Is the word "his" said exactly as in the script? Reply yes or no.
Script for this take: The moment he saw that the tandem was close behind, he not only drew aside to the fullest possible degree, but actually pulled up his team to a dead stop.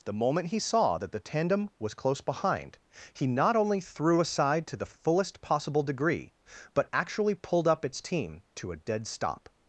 no